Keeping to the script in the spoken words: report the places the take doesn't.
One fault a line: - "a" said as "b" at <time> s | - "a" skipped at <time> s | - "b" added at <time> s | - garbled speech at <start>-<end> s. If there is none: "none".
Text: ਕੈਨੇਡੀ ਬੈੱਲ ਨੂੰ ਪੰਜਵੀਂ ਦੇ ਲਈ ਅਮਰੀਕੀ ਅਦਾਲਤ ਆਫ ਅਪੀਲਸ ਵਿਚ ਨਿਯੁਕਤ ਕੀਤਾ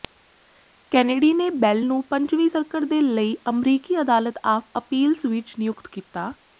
- "ਨੇ" added at 1.3 s
- "ਸਰਕਟ" added at 2.5 s